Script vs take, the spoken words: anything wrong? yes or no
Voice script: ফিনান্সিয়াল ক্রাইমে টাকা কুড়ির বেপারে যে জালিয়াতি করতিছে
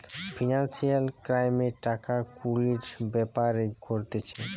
yes